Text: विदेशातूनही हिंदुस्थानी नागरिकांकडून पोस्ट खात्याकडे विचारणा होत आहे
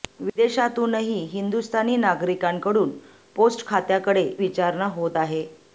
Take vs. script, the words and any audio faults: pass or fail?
pass